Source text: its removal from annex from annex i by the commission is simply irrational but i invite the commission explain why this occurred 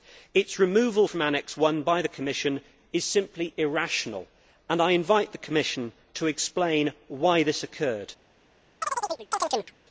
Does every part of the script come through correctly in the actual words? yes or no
no